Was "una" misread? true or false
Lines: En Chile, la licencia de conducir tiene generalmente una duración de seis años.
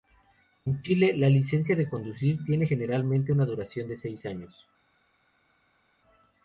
false